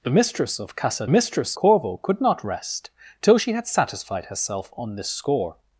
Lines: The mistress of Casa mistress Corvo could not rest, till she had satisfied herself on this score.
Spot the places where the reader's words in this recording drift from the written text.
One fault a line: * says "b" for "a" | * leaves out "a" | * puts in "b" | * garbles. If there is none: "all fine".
all fine